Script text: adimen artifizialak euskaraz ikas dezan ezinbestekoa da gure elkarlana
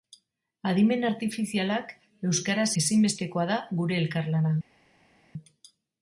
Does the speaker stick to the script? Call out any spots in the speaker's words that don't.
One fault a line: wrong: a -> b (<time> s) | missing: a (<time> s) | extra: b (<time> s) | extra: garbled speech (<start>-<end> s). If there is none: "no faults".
missing: ikas dezan (2.7 s)